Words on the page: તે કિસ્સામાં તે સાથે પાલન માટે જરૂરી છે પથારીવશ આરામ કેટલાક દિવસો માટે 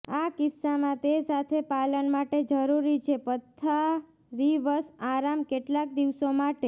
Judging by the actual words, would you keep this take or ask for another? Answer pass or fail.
fail